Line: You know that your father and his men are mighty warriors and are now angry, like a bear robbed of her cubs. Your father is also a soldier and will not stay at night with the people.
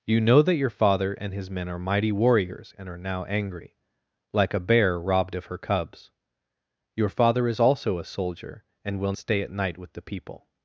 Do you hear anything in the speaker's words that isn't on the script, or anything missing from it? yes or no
yes